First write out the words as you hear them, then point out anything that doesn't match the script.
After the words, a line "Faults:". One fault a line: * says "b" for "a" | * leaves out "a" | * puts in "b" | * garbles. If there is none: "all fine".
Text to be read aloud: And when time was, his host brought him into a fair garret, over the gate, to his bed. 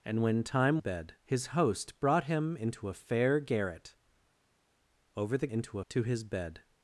And when time bed, his host brought him into a fair garret, over the into, to his bed.
Faults:
* says "bed" for "was"
* says "into" for "gate"